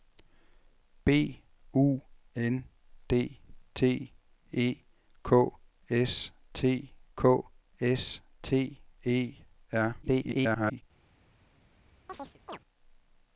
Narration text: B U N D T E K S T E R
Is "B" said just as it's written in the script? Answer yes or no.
yes